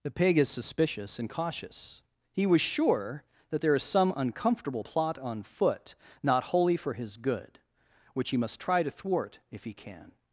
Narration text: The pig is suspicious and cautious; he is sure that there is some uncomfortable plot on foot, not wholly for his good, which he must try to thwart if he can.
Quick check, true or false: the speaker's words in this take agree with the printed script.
false